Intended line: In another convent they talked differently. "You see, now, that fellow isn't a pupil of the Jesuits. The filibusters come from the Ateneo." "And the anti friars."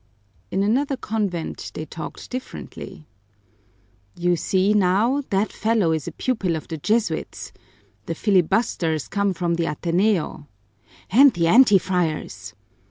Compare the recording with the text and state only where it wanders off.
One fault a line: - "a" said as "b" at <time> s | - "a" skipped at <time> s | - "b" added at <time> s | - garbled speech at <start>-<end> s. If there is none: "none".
- "isn't" said as "is" at 5.9 s